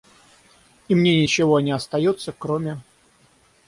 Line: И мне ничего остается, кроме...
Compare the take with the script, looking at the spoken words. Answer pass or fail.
fail